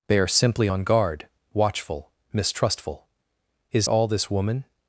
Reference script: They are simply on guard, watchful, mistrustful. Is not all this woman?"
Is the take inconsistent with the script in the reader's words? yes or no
yes